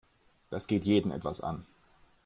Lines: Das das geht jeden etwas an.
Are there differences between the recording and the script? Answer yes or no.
yes